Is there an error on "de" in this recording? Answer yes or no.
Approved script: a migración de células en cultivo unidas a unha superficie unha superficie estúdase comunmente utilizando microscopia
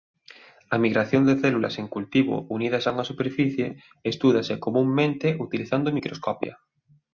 no